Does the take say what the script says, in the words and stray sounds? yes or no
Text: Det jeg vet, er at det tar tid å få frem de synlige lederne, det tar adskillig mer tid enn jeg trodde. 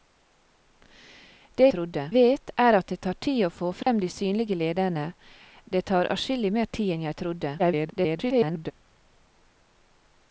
no